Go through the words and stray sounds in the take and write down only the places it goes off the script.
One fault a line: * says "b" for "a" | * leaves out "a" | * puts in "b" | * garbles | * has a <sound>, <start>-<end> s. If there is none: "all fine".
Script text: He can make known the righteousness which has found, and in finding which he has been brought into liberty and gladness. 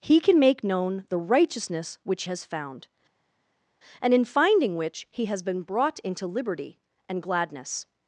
all fine